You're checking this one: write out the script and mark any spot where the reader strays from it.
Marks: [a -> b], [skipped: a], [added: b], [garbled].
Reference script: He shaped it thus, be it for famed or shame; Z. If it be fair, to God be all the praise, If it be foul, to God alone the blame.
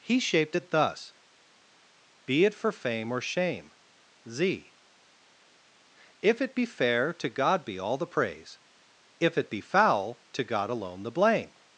He shaped it thus, be it for [famed -> fame] or shame; Z. If it be fair, to God be all the praise, If it be foul, to God alone the blame.